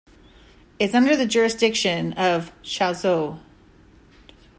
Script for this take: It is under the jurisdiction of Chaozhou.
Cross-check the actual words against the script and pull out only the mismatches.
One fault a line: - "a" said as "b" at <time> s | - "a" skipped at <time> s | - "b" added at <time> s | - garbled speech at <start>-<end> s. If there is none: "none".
none